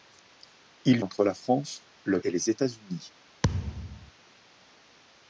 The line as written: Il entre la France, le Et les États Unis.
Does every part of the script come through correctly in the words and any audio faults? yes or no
no